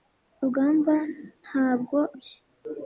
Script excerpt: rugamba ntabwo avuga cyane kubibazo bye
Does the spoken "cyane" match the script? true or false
false